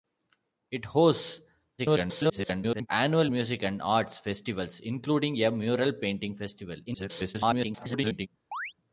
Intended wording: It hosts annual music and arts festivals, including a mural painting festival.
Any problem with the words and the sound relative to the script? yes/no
yes